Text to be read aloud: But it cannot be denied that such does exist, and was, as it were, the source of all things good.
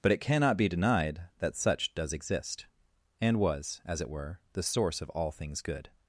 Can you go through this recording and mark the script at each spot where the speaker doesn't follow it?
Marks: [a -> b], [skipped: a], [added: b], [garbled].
But it cannot be denied that such does exist, and was, as it were, the source of all things good.